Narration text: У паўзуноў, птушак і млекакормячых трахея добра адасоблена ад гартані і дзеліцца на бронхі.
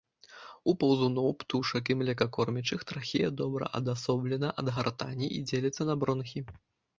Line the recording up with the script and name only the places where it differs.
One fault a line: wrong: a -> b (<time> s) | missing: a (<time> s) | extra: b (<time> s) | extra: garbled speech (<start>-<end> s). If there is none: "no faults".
no faults